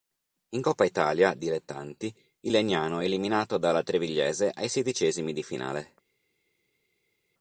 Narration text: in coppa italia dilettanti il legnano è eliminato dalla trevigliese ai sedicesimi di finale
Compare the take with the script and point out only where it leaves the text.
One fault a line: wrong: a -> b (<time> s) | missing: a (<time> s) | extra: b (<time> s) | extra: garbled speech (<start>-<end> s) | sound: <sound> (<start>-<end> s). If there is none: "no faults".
no faults